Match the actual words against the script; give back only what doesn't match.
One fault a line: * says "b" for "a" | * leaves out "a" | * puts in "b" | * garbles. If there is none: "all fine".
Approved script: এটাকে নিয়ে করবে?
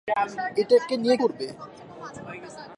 all fine